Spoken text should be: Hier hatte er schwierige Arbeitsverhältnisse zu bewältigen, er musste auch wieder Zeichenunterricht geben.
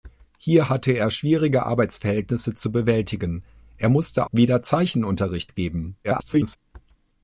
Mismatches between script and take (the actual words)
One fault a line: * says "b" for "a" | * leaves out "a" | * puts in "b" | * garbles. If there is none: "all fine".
* leaves out "auch"
* garbles